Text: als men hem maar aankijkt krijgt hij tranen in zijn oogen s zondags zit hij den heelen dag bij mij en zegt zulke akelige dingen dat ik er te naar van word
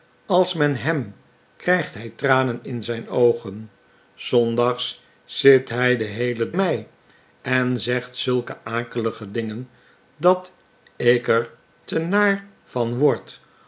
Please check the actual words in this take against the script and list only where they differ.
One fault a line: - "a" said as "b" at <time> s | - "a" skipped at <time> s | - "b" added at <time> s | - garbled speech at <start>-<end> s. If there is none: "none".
- "maar aankijkt" skipped at 1.1 s
- "dag bij" skipped at 6.5 s